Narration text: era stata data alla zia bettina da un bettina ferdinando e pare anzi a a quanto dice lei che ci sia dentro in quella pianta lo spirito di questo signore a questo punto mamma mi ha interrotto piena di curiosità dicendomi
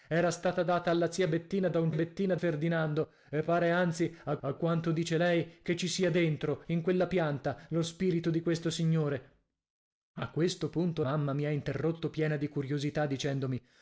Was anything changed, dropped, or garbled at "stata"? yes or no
no